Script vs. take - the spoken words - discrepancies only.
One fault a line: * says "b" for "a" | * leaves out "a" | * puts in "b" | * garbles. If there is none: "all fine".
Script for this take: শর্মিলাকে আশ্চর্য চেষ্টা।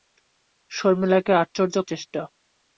all fine